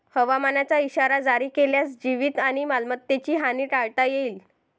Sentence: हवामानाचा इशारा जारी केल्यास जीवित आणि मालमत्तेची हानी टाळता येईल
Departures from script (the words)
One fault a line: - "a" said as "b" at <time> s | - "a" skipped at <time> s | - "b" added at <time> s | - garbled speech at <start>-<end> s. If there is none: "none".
none